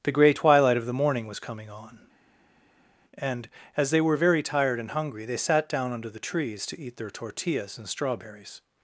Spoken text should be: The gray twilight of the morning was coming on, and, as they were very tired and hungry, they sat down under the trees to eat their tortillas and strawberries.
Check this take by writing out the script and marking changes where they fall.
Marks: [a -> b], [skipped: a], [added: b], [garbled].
The gray twilight of the morning was coming on, and, as they were very tired and hungry, they sat down under the trees to eat their tortillas and strawberries.